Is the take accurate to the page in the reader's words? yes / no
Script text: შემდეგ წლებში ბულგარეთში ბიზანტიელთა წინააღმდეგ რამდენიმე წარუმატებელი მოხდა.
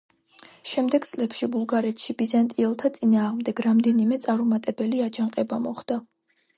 no